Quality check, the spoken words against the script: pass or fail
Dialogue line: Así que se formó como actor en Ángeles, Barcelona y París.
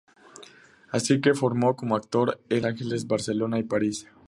pass